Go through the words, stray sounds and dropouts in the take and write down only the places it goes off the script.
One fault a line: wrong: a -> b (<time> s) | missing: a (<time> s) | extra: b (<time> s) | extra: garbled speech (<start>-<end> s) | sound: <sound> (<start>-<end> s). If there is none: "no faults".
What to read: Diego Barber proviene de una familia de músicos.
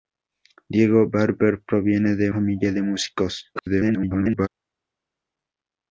missing: una (2.3 s)
extra: garbled speech (3.6-4.5 s)